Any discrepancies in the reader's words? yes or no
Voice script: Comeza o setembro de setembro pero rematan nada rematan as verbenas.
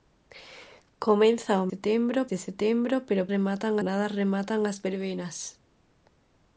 no